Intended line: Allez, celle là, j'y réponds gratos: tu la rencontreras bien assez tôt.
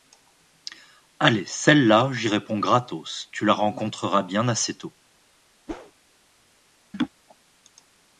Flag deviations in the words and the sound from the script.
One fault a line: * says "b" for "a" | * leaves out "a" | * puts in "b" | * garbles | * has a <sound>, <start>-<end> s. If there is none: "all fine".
* has a whoosh, 5.7-5.9 s
* has a laugh, 6.9-7.1 s